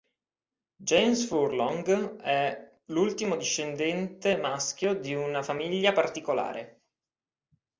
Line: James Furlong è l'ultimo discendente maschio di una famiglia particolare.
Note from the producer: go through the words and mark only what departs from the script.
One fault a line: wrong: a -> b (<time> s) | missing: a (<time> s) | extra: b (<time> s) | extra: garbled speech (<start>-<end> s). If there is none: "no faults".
no faults